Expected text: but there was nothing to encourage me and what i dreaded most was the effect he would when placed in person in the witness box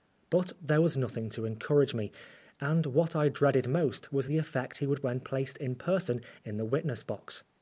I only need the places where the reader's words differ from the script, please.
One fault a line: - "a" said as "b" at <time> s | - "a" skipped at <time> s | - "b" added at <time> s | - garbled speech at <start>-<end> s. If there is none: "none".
none